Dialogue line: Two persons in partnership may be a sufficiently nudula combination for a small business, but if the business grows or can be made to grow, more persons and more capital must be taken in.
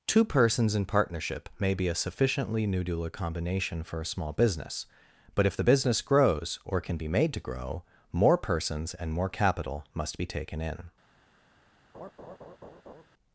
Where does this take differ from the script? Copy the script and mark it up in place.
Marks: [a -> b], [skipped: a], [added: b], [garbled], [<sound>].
Two persons in partnership may be a sufficiently nudula combination for a small business, but if the business grows or can be made to grow, more persons and more capital must be taken in. [laugh]